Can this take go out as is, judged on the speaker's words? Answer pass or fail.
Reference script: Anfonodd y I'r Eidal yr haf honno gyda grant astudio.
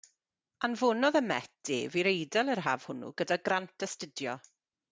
fail